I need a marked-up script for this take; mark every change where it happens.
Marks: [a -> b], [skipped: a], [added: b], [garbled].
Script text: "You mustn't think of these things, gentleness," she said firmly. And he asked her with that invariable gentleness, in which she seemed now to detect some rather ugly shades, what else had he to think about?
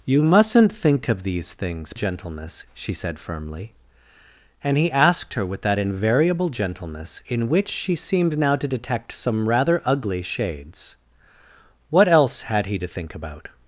"You mustn't think of these things, gentleness," she said firmly. And he asked her with that invariable gentleness, in which she seemed now to detect some rather ugly shades, what else had he to think about?